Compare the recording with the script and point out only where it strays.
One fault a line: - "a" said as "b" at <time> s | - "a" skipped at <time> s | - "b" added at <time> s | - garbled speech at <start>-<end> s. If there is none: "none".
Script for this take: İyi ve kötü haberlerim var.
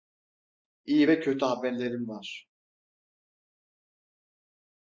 none